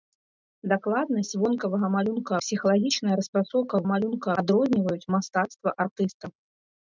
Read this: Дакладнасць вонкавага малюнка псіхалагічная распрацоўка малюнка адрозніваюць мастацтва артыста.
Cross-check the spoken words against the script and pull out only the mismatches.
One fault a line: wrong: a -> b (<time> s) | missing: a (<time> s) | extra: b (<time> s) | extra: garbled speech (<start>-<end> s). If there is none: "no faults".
no faults